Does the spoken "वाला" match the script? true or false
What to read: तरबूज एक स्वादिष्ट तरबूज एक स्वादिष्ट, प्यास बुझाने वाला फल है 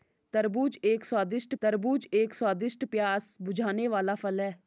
true